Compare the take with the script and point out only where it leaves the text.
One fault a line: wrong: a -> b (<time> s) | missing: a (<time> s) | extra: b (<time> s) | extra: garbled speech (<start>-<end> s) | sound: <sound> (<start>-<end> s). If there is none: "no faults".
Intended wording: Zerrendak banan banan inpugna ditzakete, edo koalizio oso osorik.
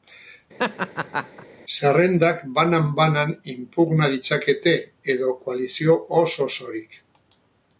sound: laugh (0.6-1.5 s)